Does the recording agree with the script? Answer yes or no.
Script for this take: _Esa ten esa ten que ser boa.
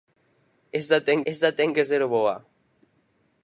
yes